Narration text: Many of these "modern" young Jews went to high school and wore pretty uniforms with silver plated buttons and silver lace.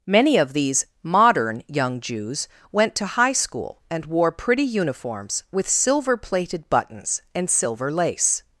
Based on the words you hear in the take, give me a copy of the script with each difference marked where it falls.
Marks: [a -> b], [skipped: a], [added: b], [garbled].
Many of these "modern" young Jews went to high school and wore pretty uniforms with silver plated buttons and silver lace.